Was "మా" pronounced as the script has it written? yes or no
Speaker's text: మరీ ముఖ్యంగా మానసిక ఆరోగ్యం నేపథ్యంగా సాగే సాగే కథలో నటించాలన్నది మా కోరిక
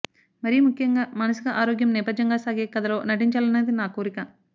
no